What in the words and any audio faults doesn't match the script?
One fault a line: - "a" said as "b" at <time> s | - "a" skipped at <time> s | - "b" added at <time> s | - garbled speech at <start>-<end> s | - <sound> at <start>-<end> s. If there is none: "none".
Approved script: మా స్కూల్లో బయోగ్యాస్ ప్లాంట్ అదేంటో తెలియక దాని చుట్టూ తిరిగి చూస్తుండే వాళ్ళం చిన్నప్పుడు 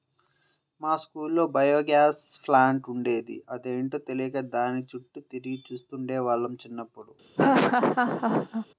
- "ఉండేది" added at 2.9 s
- laugh at 7.4-8.7 s